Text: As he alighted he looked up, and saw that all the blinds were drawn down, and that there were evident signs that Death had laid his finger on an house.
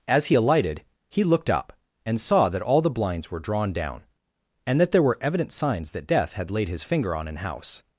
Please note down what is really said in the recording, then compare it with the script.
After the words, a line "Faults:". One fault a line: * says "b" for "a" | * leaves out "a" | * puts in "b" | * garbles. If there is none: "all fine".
As he alighted he looked up, and saw that all the blinds were drawn down, and that there were evident signs that Death had laid his finger on an house.
Faults:
all fine